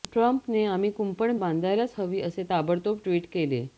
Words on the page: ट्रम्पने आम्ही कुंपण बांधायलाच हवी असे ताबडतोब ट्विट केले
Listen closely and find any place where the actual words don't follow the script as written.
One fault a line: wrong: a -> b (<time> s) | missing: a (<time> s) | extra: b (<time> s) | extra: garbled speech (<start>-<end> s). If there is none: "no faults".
no faults